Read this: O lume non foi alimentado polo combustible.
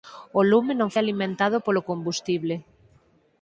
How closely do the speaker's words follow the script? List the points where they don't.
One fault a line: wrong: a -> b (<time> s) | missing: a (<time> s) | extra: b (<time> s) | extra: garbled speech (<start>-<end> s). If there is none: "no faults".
missing: foi (0.9 s)